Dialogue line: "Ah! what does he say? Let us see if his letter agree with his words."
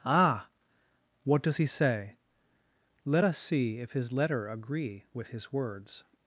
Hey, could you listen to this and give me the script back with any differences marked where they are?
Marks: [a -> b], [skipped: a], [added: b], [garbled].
"Ah! what does he say? Let us see if his letter agree with his words."